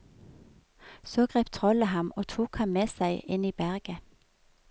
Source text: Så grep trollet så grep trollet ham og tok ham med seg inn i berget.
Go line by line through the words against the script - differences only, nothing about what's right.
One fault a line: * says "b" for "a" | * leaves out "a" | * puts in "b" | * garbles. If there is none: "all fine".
* leaves out "så grep trollet"